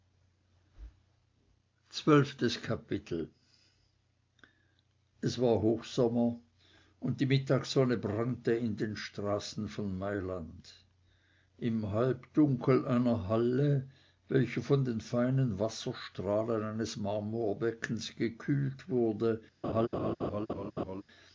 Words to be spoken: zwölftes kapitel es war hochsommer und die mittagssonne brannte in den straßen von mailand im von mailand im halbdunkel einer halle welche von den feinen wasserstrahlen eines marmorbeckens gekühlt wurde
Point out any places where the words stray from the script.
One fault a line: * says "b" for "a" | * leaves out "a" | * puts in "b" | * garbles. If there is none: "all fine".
* leaves out "von mailand im"